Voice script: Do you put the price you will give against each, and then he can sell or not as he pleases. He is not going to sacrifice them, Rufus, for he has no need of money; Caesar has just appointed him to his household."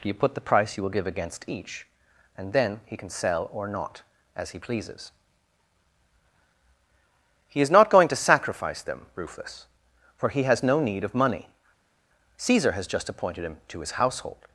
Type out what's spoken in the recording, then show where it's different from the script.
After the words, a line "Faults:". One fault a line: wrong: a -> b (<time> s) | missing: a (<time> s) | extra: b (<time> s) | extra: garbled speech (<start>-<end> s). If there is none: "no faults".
you put the price you will give against each, and then he can sell or not as he pleases. He is not going to sacrifice them, Rufus, for he has no need of money; Caesar has just appointed him to his household."
Faults:
missing: Do (0.1 s)